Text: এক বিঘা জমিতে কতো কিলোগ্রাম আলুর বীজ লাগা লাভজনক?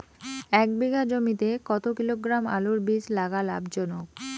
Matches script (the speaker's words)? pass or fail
pass